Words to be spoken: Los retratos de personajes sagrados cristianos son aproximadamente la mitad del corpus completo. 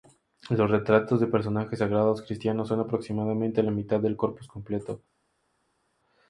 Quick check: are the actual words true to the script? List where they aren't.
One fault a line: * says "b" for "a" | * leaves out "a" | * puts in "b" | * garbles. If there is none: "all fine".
all fine